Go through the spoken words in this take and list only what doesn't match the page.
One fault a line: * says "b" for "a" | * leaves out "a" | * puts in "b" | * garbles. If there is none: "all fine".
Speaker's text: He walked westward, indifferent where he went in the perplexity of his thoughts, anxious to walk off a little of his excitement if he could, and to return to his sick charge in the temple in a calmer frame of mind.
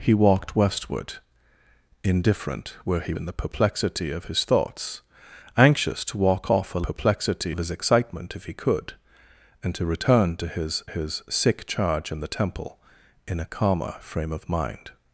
* leaves out "went"
* says "perplexity" for "little"
* puts in "his"